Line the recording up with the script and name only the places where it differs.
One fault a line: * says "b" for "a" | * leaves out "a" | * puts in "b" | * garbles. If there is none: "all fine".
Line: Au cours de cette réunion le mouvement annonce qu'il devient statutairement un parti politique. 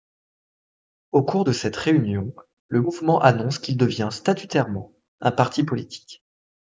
all fine